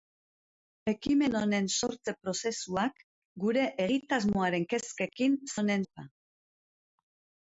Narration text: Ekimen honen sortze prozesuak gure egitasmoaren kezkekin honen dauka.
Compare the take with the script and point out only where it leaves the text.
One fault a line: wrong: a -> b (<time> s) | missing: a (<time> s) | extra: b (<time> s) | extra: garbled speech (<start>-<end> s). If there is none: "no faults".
no faults